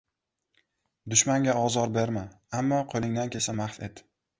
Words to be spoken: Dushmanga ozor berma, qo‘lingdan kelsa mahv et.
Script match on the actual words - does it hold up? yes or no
no